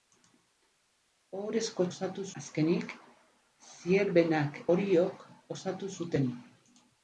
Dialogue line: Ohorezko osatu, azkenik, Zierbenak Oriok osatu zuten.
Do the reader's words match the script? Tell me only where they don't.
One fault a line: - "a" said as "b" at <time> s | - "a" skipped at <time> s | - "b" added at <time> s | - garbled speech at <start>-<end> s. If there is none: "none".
none